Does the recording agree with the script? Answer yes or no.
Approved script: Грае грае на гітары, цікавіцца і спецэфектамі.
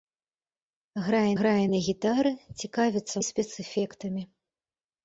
yes